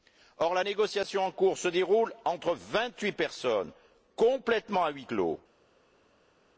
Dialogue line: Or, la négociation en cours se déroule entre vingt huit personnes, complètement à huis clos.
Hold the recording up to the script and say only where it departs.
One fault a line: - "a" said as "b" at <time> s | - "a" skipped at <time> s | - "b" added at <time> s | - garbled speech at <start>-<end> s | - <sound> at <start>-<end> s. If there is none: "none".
none